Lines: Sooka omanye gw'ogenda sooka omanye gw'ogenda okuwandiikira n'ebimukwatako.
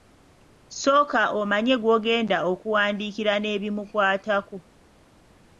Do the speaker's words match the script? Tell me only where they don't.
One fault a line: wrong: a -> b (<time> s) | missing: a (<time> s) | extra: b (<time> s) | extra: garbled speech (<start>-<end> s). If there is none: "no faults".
missing: sooka omanye gw'ogenda (2.4 s)